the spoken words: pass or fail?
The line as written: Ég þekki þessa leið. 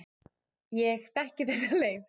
pass